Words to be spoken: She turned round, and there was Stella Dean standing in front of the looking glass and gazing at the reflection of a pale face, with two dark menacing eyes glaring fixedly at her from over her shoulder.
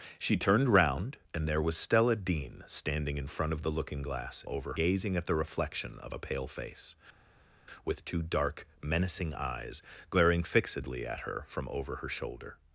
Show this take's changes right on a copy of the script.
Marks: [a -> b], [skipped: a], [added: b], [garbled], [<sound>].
She turned round, and there was Stella Dean standing in front of the looking glass [and -> over] gazing at the reflection of a pale face, with two dark menacing eyes glaring fixedly at her from over her shoulder.